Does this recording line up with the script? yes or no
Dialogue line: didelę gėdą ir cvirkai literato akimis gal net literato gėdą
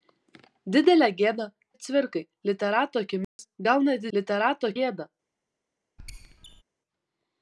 yes